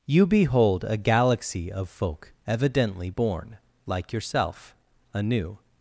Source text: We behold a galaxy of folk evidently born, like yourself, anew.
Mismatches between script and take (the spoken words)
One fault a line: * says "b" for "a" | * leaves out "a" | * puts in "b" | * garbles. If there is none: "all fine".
* says "You" for "We"